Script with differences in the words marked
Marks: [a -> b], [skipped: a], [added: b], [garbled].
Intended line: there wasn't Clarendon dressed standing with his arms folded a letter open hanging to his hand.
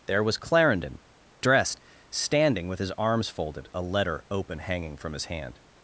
there [wasn't -> was] Clarendon dressed standing with his arms folded a letter open hanging [to -> from] his hand.